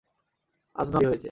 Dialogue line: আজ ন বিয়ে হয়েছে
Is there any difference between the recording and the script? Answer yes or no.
no